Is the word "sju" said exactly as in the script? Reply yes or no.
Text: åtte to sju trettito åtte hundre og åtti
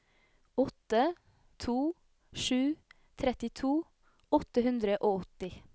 yes